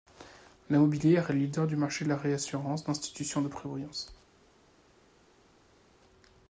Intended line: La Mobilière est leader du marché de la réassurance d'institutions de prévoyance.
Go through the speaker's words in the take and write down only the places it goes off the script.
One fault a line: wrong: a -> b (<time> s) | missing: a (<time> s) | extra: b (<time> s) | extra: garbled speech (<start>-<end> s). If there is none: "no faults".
no faults